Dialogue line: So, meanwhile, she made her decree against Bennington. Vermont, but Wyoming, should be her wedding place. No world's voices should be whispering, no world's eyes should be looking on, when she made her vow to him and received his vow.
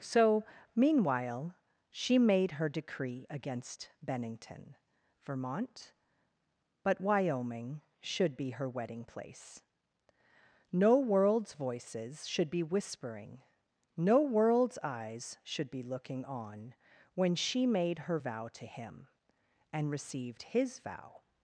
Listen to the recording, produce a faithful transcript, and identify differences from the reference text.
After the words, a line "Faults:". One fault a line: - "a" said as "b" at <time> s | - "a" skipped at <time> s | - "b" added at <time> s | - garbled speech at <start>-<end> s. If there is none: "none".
So, meanwhile, she made her decree against Bennington. Vermont, but Wyoming, should be her wedding place. No world's voices should be whispering, no world's eyes should be looking on, when she made her vow to him and received his vow.
Faults:
none